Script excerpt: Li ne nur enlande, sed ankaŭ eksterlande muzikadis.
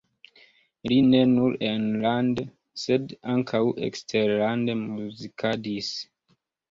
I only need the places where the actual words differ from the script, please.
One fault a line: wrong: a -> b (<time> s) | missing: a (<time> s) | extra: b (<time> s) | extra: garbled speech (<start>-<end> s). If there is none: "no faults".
no faults